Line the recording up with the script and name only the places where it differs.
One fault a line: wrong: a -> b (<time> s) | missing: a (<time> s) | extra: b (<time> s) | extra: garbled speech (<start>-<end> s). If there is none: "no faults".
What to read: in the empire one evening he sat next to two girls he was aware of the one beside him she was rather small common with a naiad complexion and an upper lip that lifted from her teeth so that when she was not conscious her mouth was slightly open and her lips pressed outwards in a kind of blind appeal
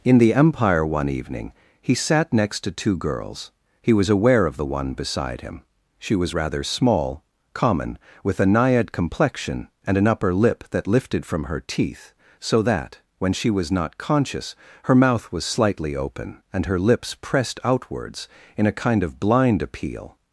no faults